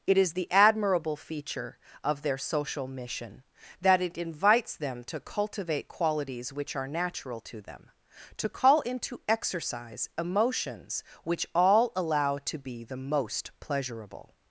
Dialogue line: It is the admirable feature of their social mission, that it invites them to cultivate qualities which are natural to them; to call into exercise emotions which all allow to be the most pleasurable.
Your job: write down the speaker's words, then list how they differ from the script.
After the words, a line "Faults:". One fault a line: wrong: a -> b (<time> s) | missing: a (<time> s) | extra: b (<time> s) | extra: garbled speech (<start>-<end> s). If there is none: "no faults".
It is the admirable feature of their social mission, that it invites them to cultivate qualities which are natural to them; to call into exercise emotions which all allow to be the most pleasurable.
Faults:
no faults